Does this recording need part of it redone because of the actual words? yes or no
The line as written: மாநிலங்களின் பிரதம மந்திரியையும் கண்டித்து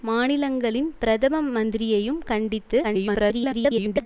yes